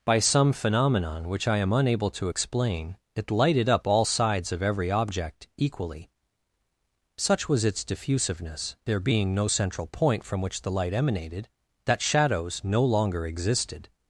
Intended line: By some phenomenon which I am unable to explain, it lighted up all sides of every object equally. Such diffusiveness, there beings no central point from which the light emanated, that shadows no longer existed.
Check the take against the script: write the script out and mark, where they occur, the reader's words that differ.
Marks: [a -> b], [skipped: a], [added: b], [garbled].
By some phenomenon which I am unable to explain, it lighted up all sides of every object equally. Such [added: was its] diffusiveness, there [beings -> being] no central point from which the light emanated, that shadows no longer existed.